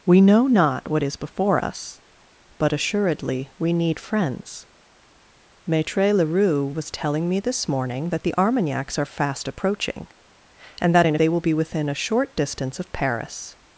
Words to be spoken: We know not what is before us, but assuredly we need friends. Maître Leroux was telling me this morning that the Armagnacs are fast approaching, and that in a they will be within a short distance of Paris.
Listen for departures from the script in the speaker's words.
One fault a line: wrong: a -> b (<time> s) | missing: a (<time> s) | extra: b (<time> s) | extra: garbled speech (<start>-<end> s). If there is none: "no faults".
no faults